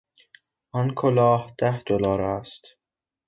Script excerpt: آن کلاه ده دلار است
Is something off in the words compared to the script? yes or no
no